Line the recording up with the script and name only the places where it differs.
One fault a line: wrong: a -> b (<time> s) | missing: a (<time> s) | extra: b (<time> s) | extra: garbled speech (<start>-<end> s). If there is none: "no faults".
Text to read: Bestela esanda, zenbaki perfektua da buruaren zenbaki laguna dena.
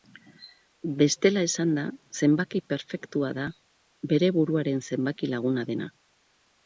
extra: bere (4.1 s)